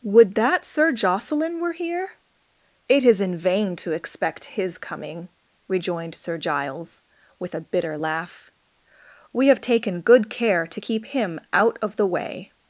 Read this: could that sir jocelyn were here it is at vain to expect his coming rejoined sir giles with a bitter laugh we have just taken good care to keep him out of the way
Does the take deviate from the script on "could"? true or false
true